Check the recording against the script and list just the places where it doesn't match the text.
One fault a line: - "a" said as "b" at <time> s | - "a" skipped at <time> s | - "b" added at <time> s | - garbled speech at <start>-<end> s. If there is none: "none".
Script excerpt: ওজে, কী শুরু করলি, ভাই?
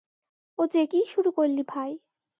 none